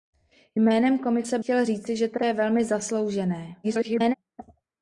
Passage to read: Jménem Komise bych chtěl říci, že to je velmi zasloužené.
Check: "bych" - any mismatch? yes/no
yes